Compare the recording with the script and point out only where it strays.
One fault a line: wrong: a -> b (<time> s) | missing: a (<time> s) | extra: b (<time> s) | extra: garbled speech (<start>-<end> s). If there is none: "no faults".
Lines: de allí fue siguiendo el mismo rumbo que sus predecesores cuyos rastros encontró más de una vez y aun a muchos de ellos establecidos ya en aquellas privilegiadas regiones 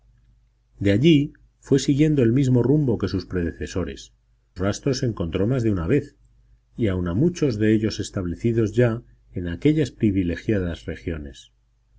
missing: cuyos (4.1 s)